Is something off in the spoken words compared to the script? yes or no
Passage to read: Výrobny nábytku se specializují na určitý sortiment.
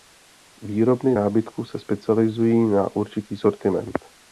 no